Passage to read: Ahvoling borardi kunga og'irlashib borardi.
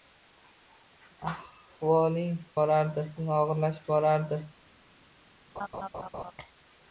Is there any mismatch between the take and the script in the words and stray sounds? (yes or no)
yes